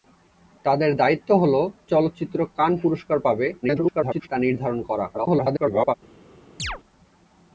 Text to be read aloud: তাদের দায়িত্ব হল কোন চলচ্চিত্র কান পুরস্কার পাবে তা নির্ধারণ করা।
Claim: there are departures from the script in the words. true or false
true